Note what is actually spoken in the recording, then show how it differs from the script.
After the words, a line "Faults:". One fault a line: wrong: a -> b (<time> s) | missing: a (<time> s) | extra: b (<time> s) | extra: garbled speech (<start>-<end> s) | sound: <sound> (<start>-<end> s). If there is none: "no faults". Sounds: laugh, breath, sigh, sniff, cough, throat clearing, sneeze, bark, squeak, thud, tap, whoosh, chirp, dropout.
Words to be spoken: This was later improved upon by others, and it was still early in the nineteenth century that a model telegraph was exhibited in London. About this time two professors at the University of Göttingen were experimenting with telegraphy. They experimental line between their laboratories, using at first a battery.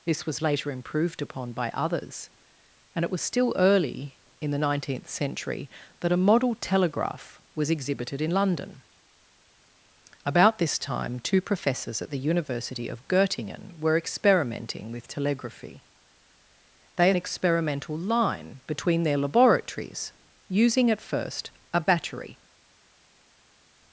This was later improved upon by others, and it was still early in the nineteenth century that a model telegraph was exhibited in London. About this time two professors at the University of Göttingen were experimenting with telegraphy. They experimental line between their laboratories, using at first a battery.
Faults:
no faults